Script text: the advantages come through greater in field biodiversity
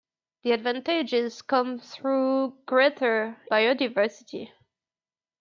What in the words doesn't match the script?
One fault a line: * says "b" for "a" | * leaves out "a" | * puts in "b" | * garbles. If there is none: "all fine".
* leaves out "in field"